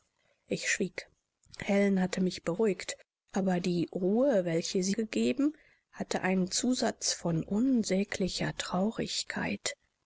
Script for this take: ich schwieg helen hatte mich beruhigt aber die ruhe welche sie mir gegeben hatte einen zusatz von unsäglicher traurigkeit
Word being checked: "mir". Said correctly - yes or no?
no